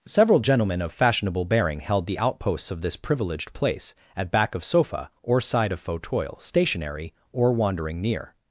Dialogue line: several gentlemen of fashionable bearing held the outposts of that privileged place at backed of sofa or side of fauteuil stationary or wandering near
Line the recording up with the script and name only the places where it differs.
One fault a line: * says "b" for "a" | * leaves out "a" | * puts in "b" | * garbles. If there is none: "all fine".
* says "this" for "that"
* says "back" for "backed"